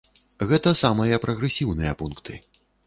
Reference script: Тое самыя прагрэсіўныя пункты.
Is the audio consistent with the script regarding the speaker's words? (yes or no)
no